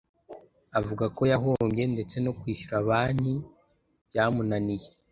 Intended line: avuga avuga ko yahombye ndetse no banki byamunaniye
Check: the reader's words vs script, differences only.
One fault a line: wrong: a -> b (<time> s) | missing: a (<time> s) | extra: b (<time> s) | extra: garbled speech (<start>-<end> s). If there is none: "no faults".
missing: avuga (1.1 s)
extra: kwishyura (2.4 s)